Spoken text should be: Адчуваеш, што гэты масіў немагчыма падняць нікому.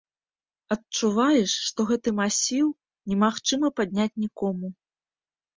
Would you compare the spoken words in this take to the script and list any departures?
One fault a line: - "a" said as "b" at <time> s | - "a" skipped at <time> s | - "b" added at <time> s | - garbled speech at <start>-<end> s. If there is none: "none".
none